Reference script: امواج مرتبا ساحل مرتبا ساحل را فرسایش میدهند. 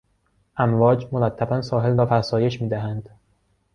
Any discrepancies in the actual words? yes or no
yes